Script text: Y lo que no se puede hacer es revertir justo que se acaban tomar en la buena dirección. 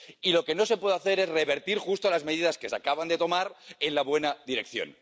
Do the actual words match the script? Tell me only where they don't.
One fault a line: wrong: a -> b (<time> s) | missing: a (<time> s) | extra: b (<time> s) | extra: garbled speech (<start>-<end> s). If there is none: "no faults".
extra: las medidas (2.1 s)
extra: de (3.1 s)